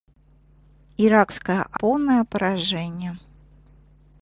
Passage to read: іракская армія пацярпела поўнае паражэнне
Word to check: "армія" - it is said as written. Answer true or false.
false